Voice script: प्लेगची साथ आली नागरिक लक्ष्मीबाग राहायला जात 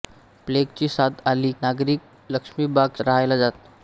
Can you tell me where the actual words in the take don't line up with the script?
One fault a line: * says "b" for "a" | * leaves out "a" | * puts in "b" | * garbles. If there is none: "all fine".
all fine